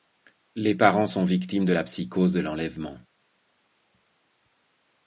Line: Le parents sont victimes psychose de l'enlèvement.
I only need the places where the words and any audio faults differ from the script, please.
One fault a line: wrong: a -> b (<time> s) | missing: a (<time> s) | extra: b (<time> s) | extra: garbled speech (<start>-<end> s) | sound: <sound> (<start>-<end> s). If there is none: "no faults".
wrong: Le -> Les (0.6 s)
extra: de la (1.6 s)